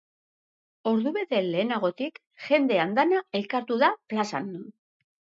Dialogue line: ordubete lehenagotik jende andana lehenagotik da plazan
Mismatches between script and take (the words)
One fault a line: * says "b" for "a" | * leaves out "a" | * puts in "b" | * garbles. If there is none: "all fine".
* says "elkartu" for "lehenagotik"